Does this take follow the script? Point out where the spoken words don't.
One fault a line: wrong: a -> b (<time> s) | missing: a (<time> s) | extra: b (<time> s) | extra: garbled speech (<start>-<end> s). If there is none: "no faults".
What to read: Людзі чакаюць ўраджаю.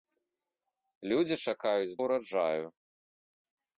no faults